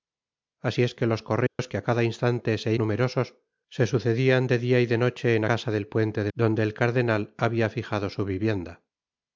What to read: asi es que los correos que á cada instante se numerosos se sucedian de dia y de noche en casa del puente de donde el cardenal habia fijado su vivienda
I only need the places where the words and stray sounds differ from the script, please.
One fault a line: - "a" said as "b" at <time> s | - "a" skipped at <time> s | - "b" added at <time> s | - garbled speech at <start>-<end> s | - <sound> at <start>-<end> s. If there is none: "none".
- dropout at 1.5-1.6 s